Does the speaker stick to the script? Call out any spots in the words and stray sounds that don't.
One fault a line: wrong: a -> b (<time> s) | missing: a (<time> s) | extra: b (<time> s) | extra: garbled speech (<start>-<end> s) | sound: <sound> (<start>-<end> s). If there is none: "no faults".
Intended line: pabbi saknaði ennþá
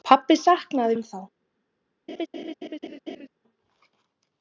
sound: laugh (2.1-3.3 s)